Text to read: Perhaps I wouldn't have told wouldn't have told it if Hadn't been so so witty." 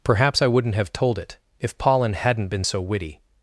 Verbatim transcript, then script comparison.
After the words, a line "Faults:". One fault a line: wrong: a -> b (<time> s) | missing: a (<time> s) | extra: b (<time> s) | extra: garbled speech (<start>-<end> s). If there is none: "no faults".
Perhaps I wouldn't have told it if Pollen hadn't been so witty."
Faults:
missing: wouldn't have told (1.2 s)
extra: Pollen (1.8 s)
missing: so (2.8 s)